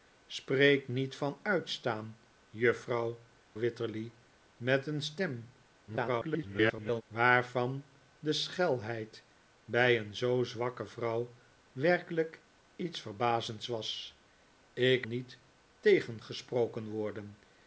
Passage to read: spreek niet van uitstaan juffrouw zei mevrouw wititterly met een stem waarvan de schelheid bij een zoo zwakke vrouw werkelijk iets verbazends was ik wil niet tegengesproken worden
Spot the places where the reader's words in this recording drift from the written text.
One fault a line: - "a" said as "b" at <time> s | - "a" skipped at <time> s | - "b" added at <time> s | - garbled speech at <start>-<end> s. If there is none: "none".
- "zei mevrouw" skipped at 3.2 s
- garbled speech at 5.9-7.0 s
- "wil" skipped at 15.1 s